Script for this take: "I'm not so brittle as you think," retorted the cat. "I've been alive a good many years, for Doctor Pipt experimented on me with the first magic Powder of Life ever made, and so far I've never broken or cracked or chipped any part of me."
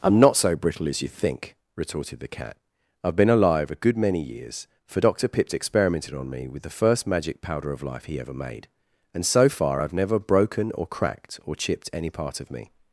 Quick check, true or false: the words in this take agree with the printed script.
false